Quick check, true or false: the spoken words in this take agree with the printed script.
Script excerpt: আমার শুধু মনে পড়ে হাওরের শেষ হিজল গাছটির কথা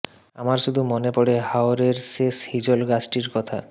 true